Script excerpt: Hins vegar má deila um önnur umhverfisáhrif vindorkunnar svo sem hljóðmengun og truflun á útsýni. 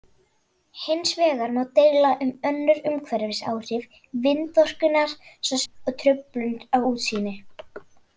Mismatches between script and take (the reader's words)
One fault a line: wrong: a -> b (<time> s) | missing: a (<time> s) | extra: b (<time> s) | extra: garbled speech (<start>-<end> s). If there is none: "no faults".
missing: sem hljóðmengun (5.6 s)